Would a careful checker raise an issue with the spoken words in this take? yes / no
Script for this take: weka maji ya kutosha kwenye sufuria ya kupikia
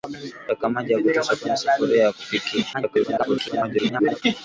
yes